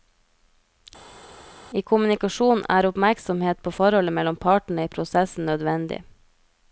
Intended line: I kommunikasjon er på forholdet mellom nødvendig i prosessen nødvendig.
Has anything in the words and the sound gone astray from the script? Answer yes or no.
yes